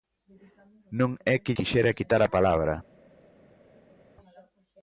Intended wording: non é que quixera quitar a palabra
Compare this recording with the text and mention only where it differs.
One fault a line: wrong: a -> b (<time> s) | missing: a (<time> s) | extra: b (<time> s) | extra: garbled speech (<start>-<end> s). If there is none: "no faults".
no faults